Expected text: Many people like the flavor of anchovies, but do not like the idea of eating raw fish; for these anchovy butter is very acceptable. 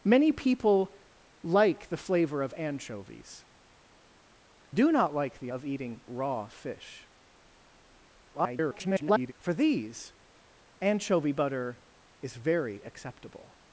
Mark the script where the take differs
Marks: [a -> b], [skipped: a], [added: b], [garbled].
Many people like the flavor of anchovies, [skipped: but] do not like the [skipped: idea] of eating raw fish; [garbled] for these anchovy butter is very acceptable.